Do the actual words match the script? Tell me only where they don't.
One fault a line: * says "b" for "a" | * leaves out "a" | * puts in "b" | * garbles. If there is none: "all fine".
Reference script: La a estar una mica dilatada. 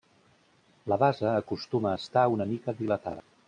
* puts in "base acostuma"